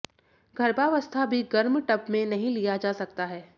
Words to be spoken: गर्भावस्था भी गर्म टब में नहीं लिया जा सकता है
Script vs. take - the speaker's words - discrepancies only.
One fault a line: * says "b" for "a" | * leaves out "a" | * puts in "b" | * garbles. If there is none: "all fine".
all fine